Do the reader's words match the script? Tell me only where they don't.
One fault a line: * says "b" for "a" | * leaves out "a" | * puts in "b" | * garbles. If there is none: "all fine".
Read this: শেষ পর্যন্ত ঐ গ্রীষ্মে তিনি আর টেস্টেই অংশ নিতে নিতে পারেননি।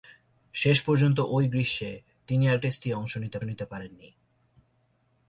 all fine